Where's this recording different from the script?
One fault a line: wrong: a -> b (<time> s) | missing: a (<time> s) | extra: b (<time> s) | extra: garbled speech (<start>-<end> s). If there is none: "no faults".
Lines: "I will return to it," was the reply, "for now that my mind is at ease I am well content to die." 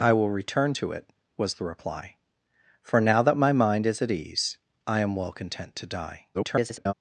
extra: garbled speech (6.3-6.9 s)